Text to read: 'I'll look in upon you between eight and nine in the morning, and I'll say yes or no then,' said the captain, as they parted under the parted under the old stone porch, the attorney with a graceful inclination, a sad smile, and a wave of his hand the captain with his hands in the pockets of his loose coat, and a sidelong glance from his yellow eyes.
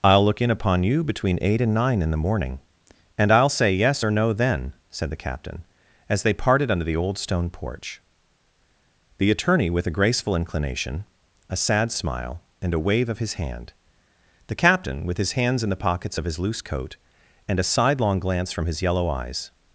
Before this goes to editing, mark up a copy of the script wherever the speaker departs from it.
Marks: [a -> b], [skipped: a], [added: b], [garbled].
'I'll look in upon you between eight and nine in the morning, and I'll say yes or no then,' said the captain, as they parted under the [skipped: parted under the] old stone porch, the attorney with a graceful inclination, a sad smile, and a wave of his hand the captain with his hands in the pockets of his loose coat, and a sidelong glance from his yellow eyes.